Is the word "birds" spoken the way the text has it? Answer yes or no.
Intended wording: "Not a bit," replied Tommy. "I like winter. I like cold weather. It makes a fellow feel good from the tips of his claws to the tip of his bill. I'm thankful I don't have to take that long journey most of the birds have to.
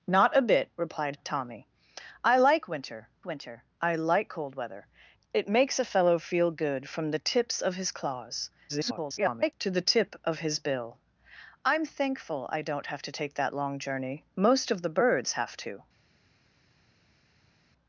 yes